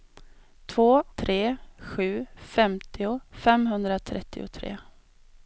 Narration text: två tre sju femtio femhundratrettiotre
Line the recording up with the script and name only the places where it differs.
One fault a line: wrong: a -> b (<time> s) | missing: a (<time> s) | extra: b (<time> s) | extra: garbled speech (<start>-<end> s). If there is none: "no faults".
no faults